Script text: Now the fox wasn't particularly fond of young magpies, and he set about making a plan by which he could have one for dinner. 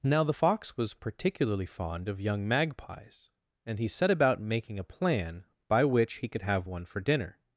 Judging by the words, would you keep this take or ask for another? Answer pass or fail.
fail